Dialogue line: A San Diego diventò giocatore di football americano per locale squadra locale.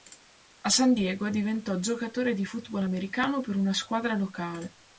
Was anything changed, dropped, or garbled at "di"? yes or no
no